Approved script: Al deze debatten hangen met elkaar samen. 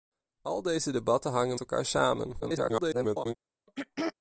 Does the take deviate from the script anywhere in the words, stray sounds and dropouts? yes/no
yes